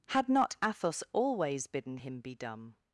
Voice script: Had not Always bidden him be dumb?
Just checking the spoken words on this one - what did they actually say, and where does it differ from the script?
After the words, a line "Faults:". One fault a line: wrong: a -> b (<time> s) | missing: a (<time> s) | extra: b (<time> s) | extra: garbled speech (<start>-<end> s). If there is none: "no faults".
Had not Athos always bidden him be dumb?
Faults:
extra: Athos (0.6 s)